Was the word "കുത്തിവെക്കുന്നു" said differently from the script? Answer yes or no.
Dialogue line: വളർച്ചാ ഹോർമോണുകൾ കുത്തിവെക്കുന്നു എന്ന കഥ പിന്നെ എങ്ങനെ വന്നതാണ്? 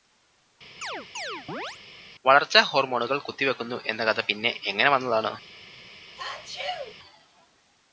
no